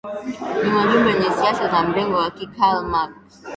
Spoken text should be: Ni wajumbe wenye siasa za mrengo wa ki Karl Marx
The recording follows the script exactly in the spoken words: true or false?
true